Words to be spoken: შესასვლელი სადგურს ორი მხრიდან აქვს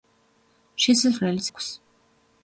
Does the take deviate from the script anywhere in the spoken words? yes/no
yes